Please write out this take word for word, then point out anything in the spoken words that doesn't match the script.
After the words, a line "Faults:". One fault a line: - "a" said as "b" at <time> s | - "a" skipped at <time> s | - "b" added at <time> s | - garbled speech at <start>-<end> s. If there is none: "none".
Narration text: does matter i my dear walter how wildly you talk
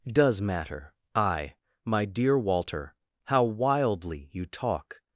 does matter i my dear walter how wildly you talk
Faults:
none